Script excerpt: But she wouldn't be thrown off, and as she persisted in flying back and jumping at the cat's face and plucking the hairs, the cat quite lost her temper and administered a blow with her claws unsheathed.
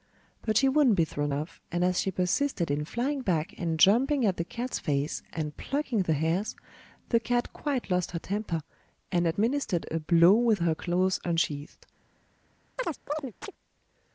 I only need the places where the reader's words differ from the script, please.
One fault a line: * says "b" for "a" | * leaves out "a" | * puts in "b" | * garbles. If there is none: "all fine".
all fine